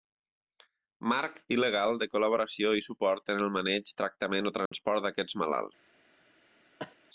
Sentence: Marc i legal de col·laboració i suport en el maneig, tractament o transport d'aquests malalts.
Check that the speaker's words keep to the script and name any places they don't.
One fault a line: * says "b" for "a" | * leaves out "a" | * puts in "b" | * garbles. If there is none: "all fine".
all fine